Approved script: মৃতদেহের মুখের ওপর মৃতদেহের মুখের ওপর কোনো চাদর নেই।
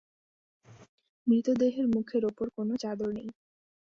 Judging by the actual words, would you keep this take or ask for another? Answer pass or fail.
fail